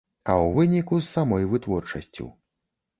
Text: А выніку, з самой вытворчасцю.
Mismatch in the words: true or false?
true